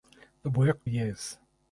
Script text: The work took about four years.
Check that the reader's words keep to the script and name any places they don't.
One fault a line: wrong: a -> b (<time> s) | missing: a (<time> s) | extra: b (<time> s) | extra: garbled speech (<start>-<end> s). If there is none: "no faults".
missing: took about four (0.9 s)